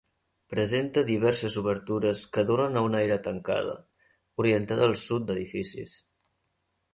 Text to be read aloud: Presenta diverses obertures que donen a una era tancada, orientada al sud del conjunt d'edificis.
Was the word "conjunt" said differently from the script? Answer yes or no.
yes